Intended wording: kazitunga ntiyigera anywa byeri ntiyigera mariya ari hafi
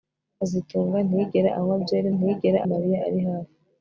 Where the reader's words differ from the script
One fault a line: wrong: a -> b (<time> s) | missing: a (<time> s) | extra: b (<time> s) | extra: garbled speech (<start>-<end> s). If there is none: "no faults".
no faults